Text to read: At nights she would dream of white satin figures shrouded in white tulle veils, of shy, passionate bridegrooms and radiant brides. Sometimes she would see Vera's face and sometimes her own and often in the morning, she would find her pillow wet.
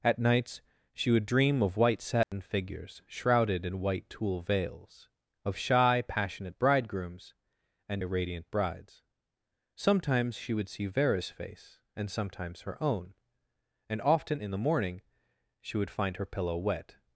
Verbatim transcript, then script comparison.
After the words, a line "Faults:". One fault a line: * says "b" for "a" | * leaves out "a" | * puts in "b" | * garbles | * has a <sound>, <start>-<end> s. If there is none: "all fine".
At nights she would dream of white satin figures shrouded in white tulle veils, of shy, passionate bridegrooms and radiant brides. Sometimes she would see Vera's face and sometimes her own and often in the morning, she would find her pillow wet.
Faults:
* has a dropout, 2.2-2.3 s